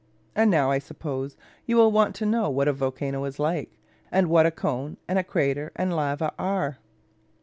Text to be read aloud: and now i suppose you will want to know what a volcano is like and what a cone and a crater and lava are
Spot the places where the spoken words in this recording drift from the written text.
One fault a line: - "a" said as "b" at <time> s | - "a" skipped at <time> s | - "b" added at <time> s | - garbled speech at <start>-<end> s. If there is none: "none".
none